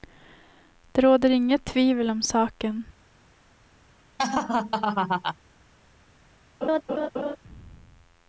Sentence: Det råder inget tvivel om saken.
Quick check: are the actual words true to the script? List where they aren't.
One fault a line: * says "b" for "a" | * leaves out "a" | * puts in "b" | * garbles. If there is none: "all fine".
all fine